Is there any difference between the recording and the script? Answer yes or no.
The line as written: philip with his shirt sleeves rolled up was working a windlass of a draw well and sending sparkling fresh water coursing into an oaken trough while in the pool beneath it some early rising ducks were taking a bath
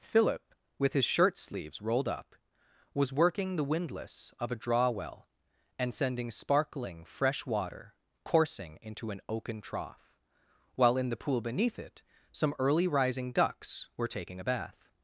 yes